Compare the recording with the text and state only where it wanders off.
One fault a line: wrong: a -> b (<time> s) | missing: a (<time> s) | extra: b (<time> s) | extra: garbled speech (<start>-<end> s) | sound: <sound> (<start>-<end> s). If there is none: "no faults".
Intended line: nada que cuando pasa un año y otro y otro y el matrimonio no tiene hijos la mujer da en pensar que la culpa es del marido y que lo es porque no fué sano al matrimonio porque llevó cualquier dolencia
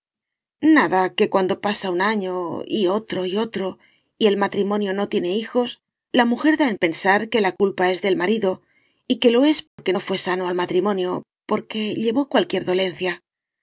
sound: dropout (9.7-9.8 s)